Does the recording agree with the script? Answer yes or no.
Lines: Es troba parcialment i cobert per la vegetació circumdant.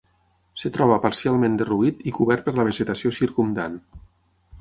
no